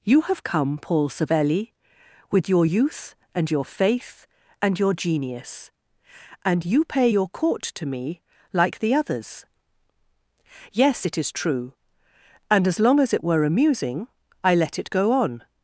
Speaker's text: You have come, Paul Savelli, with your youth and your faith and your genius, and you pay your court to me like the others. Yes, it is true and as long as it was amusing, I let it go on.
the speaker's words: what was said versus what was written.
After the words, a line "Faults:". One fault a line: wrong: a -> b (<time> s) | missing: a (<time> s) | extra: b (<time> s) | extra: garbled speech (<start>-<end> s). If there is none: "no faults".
You have come, Paul Savelli, with your youth and your faith and your genius, and you pay your court to me like the others. Yes, it is true and as long as it were amusing, I let it go on.
Faults:
wrong: was -> were (13.2 s)